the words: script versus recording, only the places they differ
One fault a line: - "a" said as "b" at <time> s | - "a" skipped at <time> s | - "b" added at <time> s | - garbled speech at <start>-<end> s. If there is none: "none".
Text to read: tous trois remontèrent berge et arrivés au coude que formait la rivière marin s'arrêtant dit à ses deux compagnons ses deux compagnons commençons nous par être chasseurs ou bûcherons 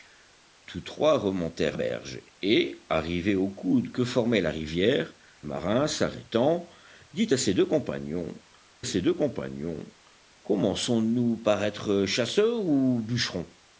none